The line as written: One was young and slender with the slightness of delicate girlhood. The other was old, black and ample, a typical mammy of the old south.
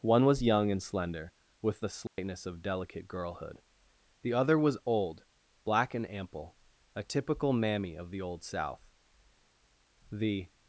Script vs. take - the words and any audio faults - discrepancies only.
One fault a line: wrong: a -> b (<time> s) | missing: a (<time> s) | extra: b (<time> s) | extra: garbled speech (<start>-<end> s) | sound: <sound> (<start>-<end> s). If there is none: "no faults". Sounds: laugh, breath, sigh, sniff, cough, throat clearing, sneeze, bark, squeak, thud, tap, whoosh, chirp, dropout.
sound: dropout (2.1-2.2 s)
extra: The (10.1 s)